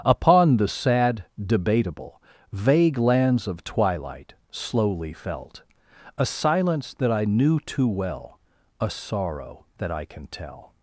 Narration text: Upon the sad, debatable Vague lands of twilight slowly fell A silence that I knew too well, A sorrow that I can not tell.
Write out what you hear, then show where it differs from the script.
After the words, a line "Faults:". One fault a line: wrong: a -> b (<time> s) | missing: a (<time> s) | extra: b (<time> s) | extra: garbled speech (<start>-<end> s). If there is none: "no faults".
Upon the sad, debatable Vague lands of twilight slowly felt A silence that I knew too well, A sorrow that I can tell.
Faults:
wrong: fell -> felt (5.1 s)
missing: not (10.3 s)